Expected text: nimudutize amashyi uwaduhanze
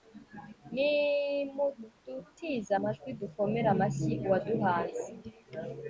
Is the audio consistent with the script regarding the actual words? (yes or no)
no